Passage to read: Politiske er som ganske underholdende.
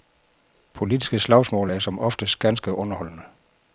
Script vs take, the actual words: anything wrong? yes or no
yes